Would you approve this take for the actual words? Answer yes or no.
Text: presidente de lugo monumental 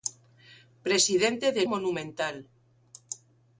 no